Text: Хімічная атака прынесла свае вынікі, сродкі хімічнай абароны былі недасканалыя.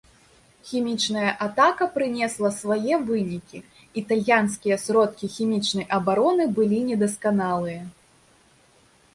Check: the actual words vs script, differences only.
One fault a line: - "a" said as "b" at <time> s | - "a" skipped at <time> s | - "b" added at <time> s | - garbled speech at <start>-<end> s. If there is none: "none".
- "італьянскія" added at 4.0 s